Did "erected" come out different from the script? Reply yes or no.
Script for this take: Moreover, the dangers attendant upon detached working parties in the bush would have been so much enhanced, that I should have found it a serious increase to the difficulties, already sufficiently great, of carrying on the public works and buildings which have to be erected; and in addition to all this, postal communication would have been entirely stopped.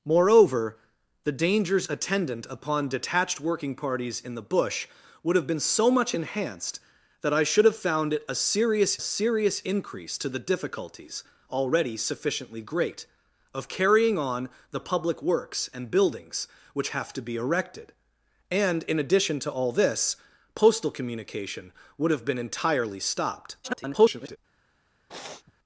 no